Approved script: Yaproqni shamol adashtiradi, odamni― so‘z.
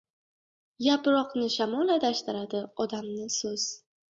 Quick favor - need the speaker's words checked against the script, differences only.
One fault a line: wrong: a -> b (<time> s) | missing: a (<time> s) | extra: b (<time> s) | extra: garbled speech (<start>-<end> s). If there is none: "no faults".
no faults